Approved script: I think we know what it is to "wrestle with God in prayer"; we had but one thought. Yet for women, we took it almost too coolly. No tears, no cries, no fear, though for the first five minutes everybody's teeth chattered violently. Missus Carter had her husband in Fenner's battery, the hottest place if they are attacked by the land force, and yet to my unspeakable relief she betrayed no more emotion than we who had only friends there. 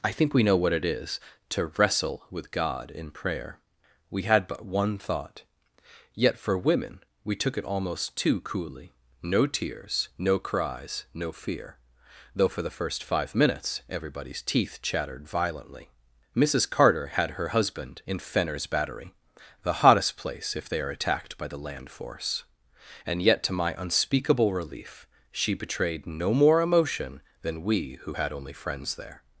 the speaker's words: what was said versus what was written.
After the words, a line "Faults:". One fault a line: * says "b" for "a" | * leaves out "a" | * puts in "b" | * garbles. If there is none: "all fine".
I think we know what it is to "wrestle with God in prayer"; we had but one thought. Yet for women, we took it almost too coolly. No tears, no cries, no fear, though for the first five minutes everybody's teeth chattered violently. Missus Carter had her husband in Fenner's battery, the hottest place if they are attacked by the land force, and yet to my unspeakable relief she betrayed no more emotion than we who had only friends there.
Faults:
all fine